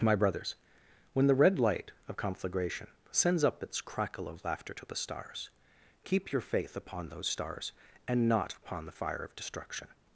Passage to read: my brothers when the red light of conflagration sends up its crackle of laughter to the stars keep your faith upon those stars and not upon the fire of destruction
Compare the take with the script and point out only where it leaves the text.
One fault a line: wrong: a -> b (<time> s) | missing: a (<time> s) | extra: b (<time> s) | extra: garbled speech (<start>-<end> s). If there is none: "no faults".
no faults